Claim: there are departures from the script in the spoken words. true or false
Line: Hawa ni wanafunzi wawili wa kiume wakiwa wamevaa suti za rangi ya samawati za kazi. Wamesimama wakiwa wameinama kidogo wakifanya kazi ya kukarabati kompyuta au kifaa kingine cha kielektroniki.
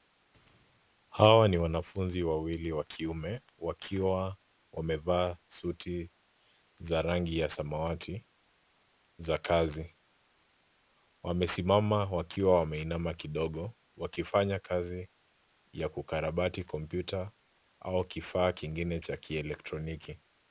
false